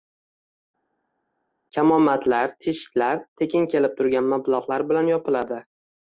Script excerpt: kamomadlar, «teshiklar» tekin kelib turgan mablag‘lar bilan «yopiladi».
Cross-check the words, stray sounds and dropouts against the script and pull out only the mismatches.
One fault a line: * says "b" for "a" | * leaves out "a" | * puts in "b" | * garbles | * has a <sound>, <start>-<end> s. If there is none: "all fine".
all fine